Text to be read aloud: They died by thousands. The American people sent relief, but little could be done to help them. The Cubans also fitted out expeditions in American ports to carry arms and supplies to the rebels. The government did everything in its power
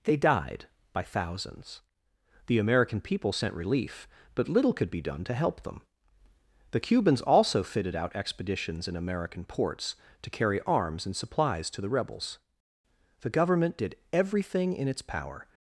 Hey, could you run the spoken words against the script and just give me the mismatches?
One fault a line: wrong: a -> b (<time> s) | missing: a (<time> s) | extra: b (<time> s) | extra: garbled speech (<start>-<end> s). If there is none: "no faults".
no faults